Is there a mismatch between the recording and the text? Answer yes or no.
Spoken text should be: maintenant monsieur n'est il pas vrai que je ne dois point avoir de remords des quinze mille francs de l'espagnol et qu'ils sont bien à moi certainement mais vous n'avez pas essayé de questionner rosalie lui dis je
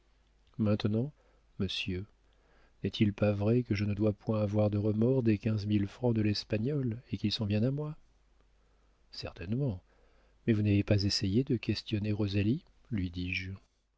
no